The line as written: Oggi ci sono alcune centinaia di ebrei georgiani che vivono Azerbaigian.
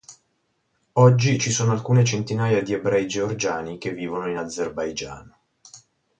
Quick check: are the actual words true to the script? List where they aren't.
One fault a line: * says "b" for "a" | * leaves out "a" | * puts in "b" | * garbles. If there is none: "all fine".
* puts in "in"